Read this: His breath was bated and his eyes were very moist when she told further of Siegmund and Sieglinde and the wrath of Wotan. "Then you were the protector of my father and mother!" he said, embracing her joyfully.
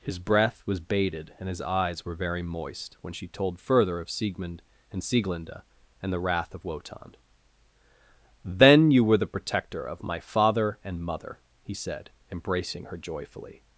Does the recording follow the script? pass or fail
pass